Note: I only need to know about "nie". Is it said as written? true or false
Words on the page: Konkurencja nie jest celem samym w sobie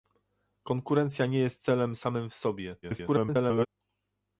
true